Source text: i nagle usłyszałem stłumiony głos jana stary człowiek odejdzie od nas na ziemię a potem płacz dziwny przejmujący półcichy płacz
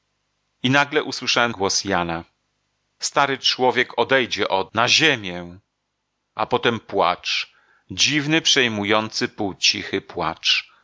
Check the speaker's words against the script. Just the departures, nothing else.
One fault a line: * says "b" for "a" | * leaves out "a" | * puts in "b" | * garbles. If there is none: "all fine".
* leaves out "stłumiony"
* leaves out "nas"